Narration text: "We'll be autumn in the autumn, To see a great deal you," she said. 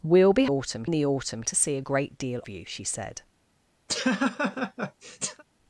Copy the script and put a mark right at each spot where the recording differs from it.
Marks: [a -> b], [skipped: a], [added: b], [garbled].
"We'll be autumn in the autumn, To see a great deal you," she said.